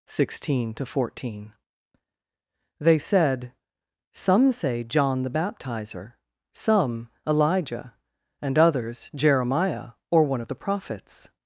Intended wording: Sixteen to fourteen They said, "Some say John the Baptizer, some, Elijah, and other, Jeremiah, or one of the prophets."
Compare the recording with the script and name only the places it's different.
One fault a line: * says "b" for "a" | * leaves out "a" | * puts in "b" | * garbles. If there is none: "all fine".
* says "others" for "other"